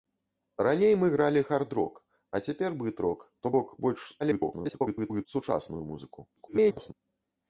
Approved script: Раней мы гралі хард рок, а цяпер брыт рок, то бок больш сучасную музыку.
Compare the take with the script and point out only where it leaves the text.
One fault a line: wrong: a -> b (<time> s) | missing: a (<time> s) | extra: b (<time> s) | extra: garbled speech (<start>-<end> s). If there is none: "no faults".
extra: garbled speech (4.2-5.3 s)
extra: garbled speech (6.4-6.9 s)